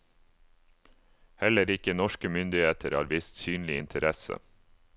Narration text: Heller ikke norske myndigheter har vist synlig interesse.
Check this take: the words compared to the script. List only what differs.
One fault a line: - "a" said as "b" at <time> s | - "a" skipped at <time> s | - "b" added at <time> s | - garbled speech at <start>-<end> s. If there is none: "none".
none